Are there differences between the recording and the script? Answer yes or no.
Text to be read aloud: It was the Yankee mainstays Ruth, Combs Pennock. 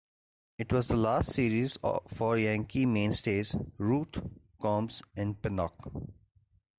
yes